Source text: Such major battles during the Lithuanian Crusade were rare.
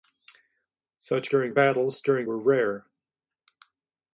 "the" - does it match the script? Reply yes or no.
no